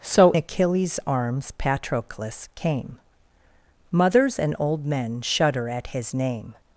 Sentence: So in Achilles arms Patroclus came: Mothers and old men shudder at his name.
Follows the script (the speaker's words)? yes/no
no